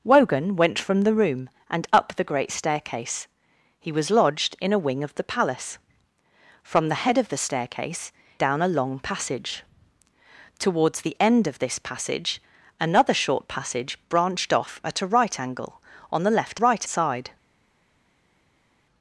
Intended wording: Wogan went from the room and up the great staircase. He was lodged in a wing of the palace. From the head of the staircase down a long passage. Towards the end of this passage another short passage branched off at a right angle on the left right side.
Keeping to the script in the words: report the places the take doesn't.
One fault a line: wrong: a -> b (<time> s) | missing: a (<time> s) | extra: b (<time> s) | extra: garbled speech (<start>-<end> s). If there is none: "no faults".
no faults